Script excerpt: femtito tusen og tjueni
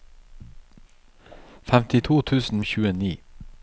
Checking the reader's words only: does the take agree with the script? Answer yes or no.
yes